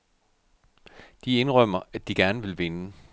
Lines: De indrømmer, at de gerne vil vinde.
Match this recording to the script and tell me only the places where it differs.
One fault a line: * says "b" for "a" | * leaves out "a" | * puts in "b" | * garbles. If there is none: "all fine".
all fine